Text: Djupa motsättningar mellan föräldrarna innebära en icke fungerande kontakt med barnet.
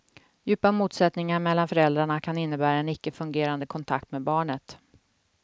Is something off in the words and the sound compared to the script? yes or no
yes